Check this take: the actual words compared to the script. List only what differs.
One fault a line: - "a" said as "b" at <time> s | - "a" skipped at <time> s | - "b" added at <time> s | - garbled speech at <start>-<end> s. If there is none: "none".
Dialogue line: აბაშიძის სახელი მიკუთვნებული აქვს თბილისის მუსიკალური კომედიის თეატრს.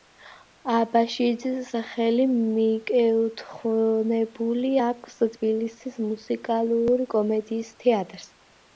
none